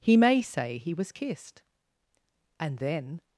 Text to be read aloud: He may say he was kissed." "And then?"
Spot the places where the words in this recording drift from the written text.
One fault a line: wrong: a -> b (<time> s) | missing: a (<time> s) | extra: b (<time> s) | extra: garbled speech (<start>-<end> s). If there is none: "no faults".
no faults